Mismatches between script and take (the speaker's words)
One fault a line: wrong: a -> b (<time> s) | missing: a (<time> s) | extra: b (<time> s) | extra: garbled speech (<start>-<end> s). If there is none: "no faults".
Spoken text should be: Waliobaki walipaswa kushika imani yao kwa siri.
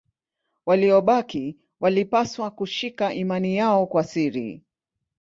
no faults